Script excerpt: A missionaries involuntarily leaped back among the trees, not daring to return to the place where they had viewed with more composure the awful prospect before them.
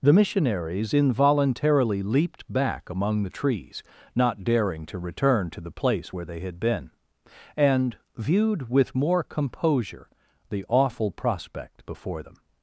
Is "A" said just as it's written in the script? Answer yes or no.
no